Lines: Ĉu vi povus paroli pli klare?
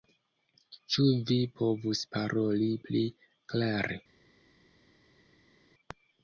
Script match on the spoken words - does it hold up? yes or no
yes